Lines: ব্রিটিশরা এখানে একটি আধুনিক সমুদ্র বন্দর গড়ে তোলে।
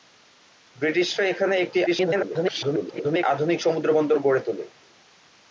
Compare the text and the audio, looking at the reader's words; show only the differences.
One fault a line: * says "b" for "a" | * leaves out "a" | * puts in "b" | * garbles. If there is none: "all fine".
* garbles